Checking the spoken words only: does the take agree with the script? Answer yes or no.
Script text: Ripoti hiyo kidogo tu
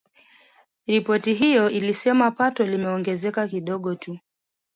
no